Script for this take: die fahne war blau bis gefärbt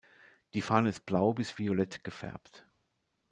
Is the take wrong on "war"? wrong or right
wrong